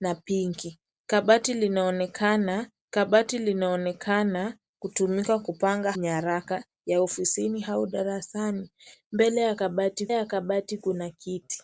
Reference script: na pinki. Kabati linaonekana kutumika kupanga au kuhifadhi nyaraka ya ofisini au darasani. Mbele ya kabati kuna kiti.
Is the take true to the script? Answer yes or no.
no